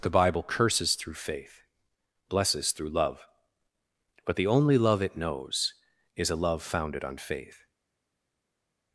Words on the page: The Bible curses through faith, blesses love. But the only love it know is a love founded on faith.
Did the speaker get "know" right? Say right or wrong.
wrong